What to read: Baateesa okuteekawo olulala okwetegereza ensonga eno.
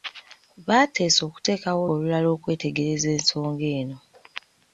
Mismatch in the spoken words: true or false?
false